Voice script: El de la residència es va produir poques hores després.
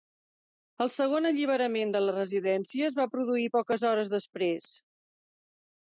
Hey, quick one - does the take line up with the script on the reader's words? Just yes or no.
no